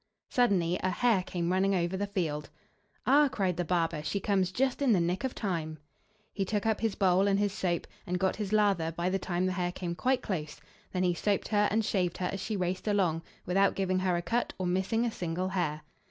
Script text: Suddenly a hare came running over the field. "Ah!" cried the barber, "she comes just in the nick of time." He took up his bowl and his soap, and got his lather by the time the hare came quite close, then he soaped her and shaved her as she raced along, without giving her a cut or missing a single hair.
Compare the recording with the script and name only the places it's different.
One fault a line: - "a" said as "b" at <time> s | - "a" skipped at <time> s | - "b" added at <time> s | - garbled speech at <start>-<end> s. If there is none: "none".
none